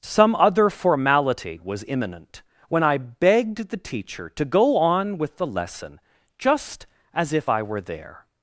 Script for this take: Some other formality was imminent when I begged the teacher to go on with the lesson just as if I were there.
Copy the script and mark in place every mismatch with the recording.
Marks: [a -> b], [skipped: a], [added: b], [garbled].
Some other formality was imminent when I begged the teacher to go on with the lesson just as if I were there.